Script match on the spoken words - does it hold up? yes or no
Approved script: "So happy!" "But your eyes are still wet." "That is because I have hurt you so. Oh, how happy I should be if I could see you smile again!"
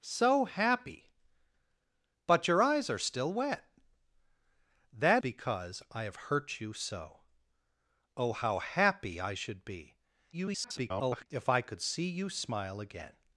no